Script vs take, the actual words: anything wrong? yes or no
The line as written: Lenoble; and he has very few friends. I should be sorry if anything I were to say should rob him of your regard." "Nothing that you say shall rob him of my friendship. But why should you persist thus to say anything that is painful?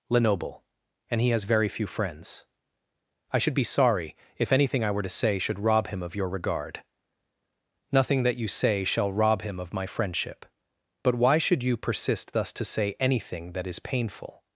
no